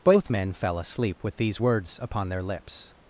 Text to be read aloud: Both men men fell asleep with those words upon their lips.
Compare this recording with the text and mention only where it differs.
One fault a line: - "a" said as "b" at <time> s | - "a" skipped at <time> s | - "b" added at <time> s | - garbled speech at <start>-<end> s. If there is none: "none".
- "men" skipped at 0.5 s
- "those" said as "these" at 1.4 s